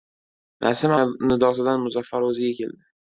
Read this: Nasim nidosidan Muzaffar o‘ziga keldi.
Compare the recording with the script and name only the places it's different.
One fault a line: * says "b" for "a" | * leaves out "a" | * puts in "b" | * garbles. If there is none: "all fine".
all fine